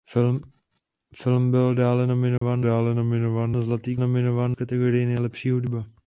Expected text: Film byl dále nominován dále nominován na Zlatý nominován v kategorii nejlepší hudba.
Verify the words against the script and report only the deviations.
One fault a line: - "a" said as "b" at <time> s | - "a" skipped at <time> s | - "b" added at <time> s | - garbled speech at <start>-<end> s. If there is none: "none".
none